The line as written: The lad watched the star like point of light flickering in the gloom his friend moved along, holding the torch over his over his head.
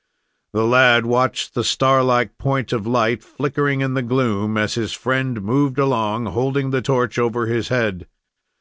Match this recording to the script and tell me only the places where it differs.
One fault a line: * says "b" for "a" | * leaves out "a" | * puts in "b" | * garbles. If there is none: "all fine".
* puts in "as"
* leaves out "over his"